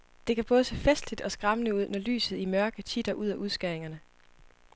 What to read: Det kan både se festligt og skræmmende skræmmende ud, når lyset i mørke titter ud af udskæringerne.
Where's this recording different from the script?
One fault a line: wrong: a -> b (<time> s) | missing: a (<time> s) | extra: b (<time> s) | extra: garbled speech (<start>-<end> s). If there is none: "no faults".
missing: skræmmende (1.8 s)